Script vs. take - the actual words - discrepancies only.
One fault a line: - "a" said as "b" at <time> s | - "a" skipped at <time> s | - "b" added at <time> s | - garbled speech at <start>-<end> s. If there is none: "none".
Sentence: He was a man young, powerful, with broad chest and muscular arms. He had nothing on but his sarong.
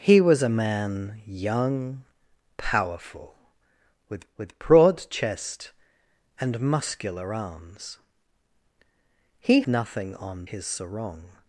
- "with" added at 4.4 s
- "had" skipped at 9.6 s
- "but" skipped at 10.4 s